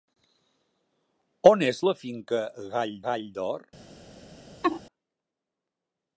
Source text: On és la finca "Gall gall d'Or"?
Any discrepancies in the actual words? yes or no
no